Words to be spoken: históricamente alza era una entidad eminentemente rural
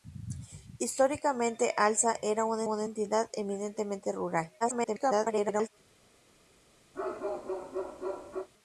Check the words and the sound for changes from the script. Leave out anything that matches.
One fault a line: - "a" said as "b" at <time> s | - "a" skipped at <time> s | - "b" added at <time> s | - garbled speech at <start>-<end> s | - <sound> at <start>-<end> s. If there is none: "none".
- "una" added at 2.6 s
- garbled speech at 4.6-5.7 s
- bark at 6.9-8.5 s